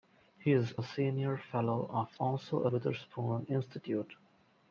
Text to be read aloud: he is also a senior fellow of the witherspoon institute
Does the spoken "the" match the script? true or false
false